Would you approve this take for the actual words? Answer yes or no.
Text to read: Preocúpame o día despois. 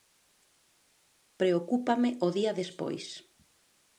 yes